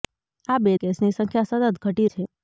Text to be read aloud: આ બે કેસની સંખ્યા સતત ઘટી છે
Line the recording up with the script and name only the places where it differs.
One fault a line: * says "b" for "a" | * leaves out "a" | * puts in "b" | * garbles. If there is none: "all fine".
all fine